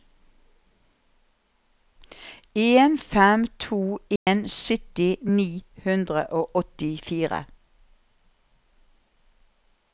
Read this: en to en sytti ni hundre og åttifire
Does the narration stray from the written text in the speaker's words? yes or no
yes